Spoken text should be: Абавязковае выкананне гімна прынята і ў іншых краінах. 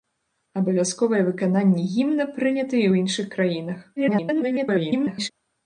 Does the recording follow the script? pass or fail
fail